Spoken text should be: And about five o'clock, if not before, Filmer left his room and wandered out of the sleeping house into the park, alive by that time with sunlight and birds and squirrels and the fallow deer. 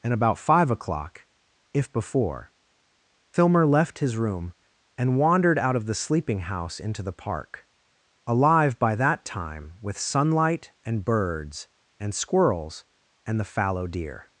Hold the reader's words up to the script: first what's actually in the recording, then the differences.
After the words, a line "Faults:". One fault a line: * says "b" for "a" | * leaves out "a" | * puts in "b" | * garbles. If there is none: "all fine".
And about five o'clock, if before, Filmer left his room and wandered out of the sleeping house into the park, alive by that time with sunlight and birds and squirrels and the fallow deer.
Faults:
* leaves out "not"